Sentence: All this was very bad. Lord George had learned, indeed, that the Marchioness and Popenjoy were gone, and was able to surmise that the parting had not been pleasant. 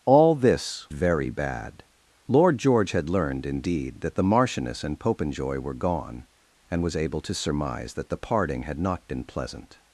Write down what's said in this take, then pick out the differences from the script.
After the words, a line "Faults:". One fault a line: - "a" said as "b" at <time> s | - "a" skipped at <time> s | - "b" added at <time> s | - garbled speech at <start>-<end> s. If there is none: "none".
All this very bad. Lord George had learned, indeed, that the Marchioness and Popenjoy were gone, and was able to surmise that the parting had not been pleasant.
Faults:
- "was" skipped at 0.9 s